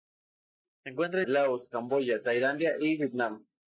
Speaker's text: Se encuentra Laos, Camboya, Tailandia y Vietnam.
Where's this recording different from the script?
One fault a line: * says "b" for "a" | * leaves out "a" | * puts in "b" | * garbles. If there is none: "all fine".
all fine